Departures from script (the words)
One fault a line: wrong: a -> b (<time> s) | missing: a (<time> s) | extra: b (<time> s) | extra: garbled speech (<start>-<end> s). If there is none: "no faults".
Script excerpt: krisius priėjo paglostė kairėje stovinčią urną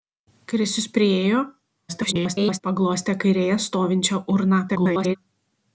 extra: garbled speech (1.9-2.6 s)
extra: garbled speech (4.7-5.2 s)